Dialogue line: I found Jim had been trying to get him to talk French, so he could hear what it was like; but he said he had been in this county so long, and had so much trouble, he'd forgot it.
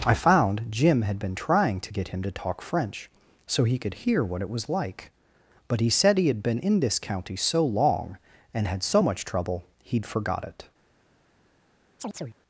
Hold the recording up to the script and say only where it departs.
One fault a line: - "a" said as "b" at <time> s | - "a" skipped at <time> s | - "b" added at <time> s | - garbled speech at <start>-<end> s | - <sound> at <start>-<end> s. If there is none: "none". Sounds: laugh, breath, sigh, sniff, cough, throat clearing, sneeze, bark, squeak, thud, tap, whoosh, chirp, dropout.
- chirp at 12.0-12.4 s